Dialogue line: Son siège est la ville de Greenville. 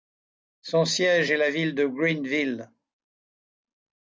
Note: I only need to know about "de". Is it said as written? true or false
true